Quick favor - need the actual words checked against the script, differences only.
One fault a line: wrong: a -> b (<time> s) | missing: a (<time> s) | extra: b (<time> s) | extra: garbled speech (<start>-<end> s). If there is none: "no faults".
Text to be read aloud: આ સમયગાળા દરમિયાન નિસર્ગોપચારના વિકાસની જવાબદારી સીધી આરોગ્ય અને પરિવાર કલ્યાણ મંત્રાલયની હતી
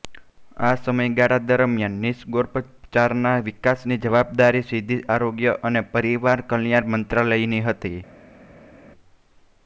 no faults